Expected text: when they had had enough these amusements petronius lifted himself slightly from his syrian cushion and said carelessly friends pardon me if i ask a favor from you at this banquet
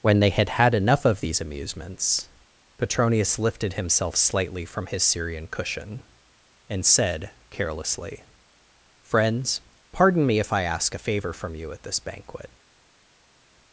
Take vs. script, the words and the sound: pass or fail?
fail